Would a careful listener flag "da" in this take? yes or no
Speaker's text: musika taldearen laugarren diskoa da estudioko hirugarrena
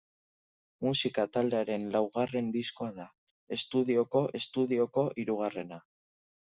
no